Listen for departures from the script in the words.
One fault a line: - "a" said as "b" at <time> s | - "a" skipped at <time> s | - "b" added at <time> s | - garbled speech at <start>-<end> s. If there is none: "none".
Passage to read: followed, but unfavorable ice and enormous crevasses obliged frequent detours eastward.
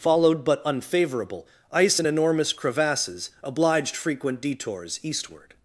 none